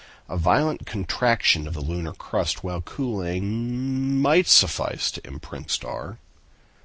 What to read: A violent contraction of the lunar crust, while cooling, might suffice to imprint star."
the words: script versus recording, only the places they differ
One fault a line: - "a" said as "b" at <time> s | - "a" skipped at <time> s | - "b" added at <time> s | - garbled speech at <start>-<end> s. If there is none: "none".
none